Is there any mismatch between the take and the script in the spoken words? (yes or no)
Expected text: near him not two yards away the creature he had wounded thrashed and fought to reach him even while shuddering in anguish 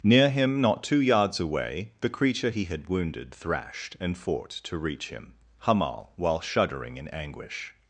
yes